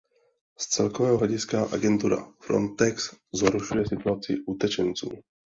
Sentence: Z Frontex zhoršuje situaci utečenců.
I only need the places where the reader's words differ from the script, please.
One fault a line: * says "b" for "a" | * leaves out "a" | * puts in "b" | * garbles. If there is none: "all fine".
* puts in "celkového hlediska agentura"